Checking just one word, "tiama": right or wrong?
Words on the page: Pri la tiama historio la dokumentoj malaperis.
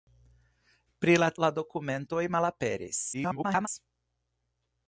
wrong